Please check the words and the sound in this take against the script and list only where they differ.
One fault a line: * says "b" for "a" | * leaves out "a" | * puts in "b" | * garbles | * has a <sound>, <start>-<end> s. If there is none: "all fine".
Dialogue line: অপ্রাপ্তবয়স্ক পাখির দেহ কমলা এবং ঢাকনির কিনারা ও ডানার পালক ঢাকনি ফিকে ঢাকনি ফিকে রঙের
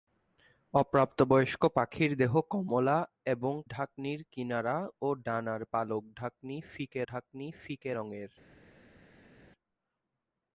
all fine